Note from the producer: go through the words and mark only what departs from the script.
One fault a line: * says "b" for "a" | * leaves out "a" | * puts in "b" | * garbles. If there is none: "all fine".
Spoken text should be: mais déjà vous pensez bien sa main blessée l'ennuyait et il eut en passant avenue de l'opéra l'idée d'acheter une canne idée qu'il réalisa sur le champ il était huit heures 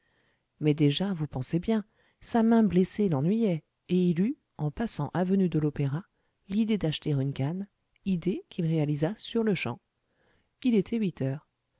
all fine